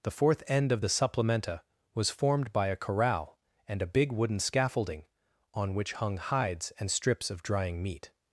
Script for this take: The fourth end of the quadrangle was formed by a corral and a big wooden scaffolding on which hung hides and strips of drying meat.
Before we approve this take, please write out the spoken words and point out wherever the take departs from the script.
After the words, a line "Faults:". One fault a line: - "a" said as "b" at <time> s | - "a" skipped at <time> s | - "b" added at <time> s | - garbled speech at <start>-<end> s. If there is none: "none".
The fourth end of the supplementa was formed by a corral and a big wooden scaffolding on which hung hides and strips of drying meat.
Faults:
- "quadrangle" said as "supplementa" at 0.9 s